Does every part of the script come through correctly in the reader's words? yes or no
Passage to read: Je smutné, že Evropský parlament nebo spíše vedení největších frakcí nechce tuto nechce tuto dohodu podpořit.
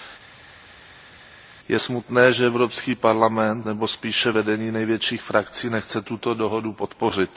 no